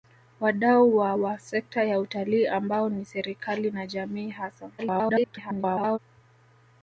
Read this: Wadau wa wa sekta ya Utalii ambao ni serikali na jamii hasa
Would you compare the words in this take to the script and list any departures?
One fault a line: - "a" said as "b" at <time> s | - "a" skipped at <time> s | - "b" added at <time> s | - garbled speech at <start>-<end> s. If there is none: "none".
- garbled speech at 4.8-6.0 s